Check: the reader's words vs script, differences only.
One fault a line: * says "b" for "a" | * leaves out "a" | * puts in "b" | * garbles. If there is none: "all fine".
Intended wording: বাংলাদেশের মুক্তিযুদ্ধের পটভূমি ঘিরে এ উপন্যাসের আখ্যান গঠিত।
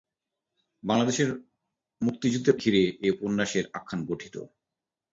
* leaves out "পটভূমি"